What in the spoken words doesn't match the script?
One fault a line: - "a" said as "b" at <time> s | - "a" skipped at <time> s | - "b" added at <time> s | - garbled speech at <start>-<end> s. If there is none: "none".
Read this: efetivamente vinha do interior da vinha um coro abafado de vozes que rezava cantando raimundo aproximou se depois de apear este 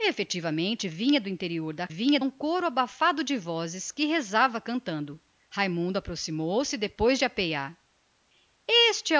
none